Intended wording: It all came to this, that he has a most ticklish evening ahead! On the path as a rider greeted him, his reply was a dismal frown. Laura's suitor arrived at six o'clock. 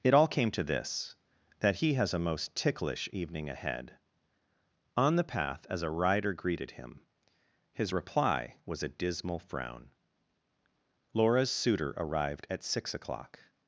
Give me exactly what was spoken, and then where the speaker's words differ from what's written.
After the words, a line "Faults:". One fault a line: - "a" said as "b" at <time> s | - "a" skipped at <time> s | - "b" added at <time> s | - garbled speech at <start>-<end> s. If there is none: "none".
It all came to this, that he has a most ticklish evening ahead! On the path as a rider greeted him, his reply was a dismal frown. Laura's suitor arrived at six o'clock.
Faults:
none